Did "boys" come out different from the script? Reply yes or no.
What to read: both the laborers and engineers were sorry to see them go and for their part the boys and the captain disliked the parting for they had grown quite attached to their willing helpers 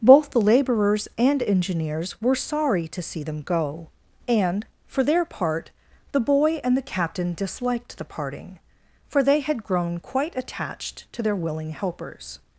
yes